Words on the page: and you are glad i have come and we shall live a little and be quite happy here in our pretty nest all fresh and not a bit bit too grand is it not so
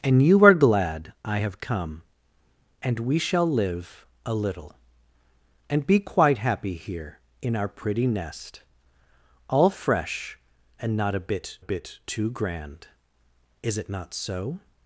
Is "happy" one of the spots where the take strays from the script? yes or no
no